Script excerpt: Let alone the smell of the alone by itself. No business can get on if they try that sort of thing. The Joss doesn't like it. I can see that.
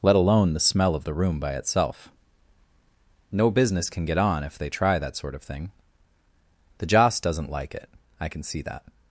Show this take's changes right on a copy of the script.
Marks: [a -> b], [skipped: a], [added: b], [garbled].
Let alone the smell of the [alone -> room] by itself. No business can get on if they try that sort of thing. The Joss doesn't like it. I can see that.